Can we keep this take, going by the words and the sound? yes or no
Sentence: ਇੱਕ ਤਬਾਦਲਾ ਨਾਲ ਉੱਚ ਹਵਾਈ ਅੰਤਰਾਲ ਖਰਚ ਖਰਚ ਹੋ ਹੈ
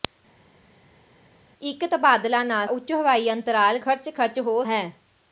yes